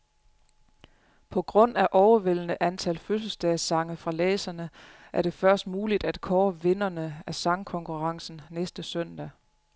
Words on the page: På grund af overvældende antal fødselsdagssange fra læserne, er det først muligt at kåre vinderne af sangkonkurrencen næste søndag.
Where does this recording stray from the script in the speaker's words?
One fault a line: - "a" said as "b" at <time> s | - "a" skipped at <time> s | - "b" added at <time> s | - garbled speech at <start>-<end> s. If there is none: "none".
none